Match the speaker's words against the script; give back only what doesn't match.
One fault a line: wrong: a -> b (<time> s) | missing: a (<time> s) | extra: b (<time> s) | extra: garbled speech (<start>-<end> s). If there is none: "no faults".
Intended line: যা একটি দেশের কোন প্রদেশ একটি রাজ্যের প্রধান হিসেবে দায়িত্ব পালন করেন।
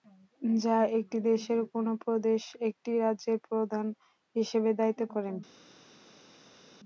missing: পালন (5.0 s)